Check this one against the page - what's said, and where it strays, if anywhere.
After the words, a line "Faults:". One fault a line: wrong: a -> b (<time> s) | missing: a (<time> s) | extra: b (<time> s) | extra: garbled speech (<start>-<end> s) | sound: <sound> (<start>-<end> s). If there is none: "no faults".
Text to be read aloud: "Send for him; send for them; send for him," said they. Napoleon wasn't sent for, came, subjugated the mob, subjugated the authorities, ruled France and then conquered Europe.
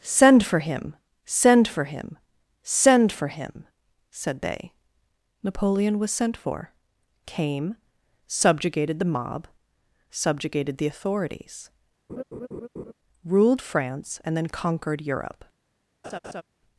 "Send for him; send for him; send for him," said they. Napoleon was sent for, came, subjugated the mob, subjugated the authorities, ruled France and then conquered Europe.
Faults:
wrong: them -> him (1.8 s)
wrong: wasn't -> was (6.0 s)
sound: laugh (12.1-12.9 s)
sound: laugh (16.0-16.4 s)